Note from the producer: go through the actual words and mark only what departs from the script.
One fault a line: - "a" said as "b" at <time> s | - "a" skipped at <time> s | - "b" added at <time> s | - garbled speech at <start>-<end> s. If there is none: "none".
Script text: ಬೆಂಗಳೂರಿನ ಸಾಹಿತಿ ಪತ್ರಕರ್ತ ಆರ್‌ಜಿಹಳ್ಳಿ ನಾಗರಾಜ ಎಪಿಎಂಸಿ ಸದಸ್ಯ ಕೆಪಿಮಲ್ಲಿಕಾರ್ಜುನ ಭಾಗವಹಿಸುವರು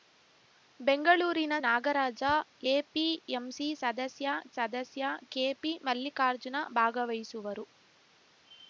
- "ಸಾಹಿತಿ ಪತ್ರಕರ್ತ ಆರ್‌ಜಿಹಳ್ಳಿ" skipped at 1.6 s
- "ಸದಸ್ಯ" added at 4.6 s